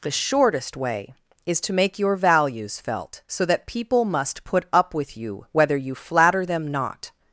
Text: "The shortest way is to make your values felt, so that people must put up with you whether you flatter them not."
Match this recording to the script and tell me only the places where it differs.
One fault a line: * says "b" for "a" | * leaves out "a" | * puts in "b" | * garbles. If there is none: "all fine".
all fine